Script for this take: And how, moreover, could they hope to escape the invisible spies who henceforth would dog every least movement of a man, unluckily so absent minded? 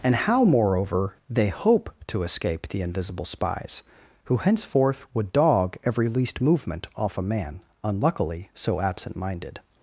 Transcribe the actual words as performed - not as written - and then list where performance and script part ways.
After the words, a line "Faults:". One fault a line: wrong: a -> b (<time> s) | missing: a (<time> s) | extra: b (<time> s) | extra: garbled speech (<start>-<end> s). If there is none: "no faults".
And how, moreover, they hope to escape the invisible spies who henceforth would dog every least movement off a man, unluckily so absent minded?
Faults:
missing: could (1.1 s)
wrong: of -> off (6.9 s)